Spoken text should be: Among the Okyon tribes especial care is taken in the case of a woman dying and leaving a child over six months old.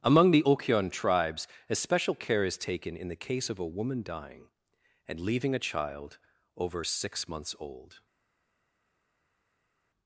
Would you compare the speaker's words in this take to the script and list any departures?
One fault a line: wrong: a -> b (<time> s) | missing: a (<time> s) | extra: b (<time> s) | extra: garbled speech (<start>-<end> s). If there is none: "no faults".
no faults